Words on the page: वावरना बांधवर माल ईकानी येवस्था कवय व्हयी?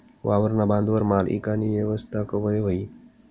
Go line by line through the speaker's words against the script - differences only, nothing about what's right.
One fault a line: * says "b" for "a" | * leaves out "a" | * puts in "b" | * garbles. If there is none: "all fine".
all fine